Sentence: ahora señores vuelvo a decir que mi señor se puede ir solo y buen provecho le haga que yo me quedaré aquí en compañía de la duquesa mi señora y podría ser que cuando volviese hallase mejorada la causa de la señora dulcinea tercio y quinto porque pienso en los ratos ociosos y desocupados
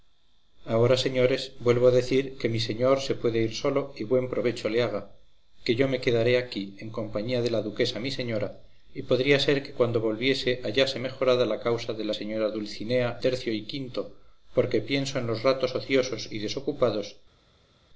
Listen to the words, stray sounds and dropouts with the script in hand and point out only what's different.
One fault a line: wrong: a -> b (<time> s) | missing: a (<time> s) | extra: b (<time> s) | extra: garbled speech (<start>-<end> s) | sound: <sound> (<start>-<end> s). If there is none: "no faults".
no faults